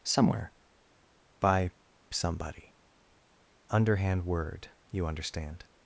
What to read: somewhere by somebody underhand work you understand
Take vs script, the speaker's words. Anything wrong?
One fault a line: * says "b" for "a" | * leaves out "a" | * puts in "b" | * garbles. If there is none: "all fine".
* says "word" for "work"